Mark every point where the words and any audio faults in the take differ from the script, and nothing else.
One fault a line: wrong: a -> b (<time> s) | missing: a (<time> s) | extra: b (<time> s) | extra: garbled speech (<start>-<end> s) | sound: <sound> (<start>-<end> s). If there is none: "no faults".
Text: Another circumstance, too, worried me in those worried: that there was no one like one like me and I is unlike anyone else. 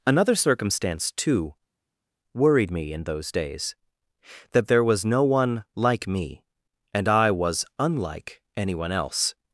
wrong: worried -> days (3.3 s)
missing: one like (6.1 s)
wrong: is -> was (7.3 s)